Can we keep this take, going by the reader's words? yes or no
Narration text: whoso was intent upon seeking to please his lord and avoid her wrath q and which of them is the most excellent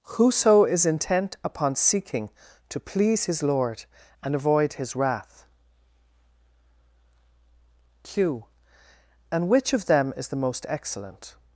no